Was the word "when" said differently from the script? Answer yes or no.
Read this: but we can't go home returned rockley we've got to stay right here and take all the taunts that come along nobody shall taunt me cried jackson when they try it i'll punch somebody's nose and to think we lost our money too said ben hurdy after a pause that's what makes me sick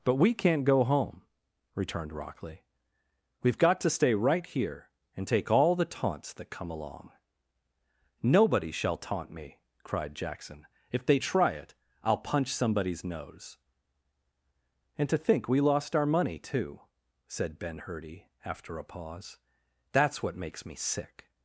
yes